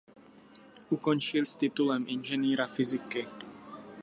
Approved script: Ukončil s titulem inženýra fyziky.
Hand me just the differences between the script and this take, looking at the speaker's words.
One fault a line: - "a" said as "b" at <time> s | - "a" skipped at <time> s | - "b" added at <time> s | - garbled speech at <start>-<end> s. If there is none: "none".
none